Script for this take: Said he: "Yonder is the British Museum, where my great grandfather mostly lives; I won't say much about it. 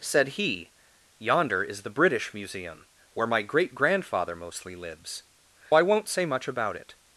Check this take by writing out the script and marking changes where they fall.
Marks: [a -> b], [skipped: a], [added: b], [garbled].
Said he: "Yonder is the British Museum, where my great grandfather mostly lives; I won't say much about it.